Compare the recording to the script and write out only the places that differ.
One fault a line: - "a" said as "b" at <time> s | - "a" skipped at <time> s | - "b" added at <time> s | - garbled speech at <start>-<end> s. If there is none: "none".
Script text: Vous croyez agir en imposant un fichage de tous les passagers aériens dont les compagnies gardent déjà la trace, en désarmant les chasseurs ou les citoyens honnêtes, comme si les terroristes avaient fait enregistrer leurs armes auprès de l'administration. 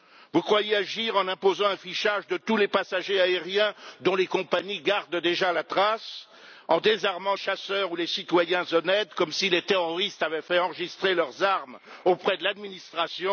- "les" skipped at 7.3 s